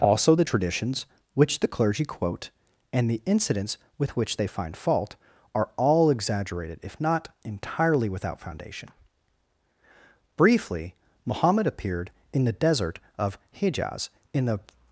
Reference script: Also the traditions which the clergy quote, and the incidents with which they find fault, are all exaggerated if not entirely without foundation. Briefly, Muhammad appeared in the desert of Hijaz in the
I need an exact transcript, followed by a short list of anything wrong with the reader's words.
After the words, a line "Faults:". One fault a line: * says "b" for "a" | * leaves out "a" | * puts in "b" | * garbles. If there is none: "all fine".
Also the traditions which the clergy quote, and the incidents with which they find fault, are all exaggerated if not entirely without foundation. Briefly, Muhammad appeared in the desert of Hijaz in the
Faults:
all fine